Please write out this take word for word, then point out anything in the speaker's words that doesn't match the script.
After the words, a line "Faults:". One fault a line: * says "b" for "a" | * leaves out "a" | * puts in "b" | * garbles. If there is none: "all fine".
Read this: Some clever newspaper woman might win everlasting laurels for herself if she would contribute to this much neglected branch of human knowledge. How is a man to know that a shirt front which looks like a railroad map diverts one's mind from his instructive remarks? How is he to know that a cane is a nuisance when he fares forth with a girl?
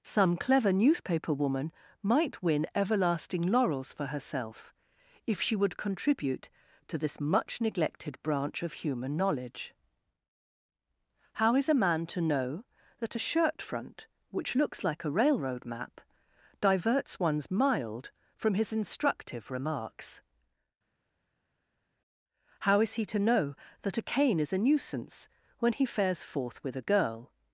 Some clever newspaper woman might win everlasting laurels for herself if she would contribute to this much neglected branch of human knowledge. How is a man to know that a shirt front which looks like a railroad map diverts one's mild from his instructive remarks? How is he to know that a cane is a nuisance when he fares forth with a girl?
Faults:
* says "mild" for "mind"